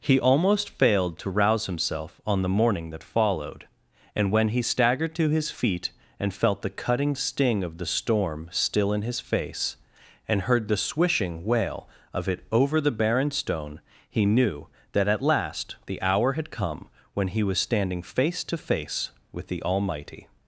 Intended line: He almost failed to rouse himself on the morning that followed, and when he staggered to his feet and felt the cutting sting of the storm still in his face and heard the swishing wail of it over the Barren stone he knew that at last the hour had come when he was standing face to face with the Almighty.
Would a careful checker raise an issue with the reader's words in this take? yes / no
no